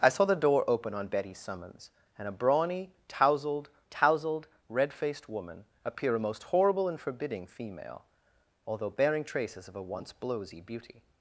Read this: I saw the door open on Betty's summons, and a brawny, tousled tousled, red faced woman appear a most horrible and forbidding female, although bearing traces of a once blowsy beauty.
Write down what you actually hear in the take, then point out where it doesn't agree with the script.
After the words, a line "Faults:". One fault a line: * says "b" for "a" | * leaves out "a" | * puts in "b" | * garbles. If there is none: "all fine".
I saw the door open on Betty's summons, and a brawny, tousled tousled, red faced woman appear a most horrible and forbidding female, although bearing traces of a once blowsy beauty.
Faults:
all fine